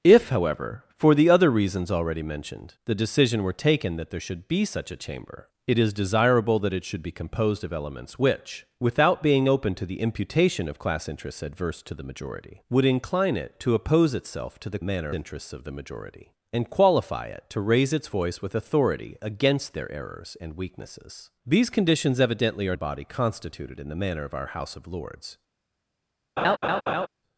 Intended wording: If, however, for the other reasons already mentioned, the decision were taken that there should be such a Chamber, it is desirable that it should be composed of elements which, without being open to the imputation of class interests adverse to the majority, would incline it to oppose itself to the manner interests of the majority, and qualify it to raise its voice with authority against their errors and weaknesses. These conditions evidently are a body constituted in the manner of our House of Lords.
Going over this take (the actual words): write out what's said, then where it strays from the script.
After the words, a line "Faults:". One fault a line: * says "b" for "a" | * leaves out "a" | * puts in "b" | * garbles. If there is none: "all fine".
If, however, for the other reasons already mentioned, the decision were taken that there should be such a Chamber, it is desirable that it should be composed of elements which, without being open to the imputation of class interests adverse to the majority, would incline it to oppose itself to the manner interests of the majority, and qualify it to raise its voice with authority against their errors and weaknesses. These conditions evidently are a body constituted in the manner of our House of Lords.
Faults:
all fine